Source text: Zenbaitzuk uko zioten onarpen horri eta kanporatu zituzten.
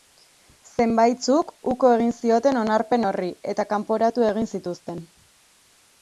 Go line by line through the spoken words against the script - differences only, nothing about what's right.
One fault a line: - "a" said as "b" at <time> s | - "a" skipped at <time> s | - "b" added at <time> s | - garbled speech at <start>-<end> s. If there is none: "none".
- "egin" added at 2.0 s
- "egin" added at 4.3 s